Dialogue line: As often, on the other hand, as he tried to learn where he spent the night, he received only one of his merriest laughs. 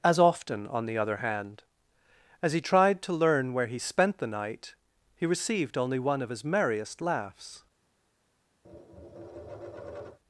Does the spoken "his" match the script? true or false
true